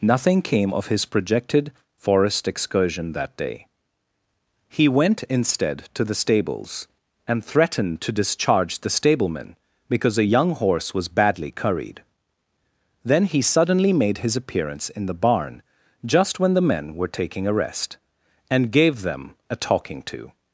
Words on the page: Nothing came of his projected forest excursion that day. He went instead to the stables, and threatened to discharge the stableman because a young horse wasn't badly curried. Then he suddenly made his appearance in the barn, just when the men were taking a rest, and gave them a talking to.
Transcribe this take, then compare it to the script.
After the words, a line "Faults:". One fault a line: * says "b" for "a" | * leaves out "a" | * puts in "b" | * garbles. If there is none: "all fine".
Nothing came of his projected forest excursion that day. He went instead to the stables, and threatened to discharge the stableman because a young horse was badly curried. Then he suddenly made his appearance in the barn, just when the men were taking a rest, and gave them a talking to.
Faults:
* says "was" for "wasn't"